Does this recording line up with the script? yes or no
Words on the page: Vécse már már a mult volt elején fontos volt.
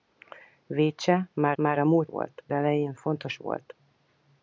yes